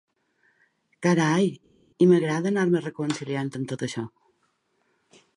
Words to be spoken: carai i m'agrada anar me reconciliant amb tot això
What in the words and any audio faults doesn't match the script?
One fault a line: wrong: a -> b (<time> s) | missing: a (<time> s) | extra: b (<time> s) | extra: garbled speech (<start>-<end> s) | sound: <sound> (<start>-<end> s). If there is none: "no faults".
no faults